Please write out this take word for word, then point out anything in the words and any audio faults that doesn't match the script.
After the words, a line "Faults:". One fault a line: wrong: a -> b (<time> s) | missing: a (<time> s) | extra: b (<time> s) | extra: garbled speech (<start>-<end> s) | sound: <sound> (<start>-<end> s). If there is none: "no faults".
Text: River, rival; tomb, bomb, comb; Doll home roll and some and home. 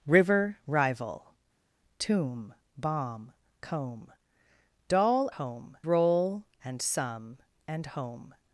River, rival; tomb, bomb, comb; Doll home roll and some and home.
Faults:
no faults